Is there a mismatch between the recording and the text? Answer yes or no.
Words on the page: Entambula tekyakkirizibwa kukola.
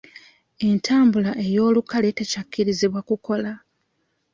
yes